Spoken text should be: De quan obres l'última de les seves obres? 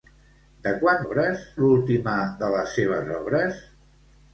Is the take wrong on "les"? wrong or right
right